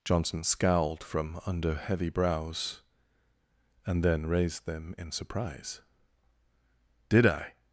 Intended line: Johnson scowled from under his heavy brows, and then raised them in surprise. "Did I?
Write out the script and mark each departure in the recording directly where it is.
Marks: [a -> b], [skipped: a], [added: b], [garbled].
Johnson scowled from under [skipped: his] heavy brows, and then raised them in surprise. "Did I?